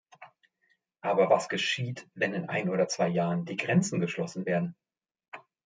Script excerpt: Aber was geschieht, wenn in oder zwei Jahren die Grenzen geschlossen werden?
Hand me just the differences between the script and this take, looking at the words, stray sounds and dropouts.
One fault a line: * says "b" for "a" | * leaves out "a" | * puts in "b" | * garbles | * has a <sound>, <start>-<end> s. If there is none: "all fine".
* puts in "ein"